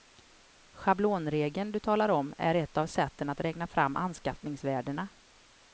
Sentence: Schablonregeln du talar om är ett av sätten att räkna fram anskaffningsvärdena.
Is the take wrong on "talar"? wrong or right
right